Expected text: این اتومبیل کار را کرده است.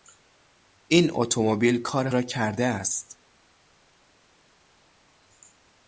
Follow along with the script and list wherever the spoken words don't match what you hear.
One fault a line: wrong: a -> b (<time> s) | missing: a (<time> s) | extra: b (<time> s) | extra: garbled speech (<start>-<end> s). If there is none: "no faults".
no faults